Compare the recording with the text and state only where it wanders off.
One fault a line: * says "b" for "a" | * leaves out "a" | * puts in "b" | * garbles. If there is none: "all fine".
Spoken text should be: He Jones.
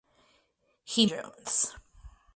all fine